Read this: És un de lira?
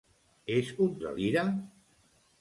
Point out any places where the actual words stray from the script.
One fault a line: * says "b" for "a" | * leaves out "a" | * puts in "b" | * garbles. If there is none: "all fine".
all fine